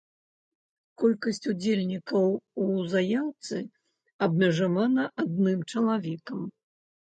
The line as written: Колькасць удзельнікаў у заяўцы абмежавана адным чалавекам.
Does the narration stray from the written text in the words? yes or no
no